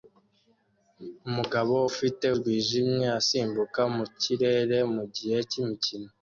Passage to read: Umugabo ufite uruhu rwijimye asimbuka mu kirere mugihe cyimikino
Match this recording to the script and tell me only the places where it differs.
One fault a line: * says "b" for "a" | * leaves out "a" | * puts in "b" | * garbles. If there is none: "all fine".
* leaves out "uruhu"